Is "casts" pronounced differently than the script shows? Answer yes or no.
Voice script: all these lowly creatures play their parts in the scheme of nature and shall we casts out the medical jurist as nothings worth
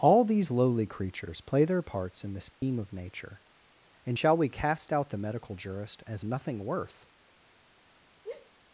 yes